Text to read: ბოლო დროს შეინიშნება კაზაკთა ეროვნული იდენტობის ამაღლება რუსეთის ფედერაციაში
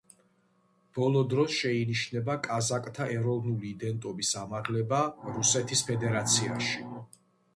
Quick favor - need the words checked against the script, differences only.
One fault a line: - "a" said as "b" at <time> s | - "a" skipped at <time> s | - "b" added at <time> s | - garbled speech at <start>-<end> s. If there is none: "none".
none